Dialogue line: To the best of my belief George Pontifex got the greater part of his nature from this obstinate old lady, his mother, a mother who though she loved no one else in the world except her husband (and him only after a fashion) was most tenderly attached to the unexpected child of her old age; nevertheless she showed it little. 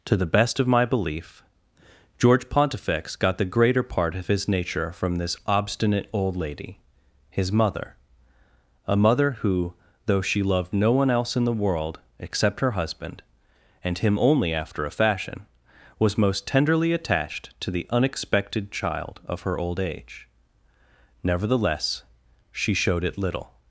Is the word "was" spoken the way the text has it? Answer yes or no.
yes